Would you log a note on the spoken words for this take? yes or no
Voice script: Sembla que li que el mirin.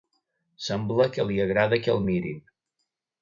yes